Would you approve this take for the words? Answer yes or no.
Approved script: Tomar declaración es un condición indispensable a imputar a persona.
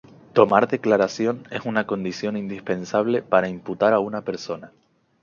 no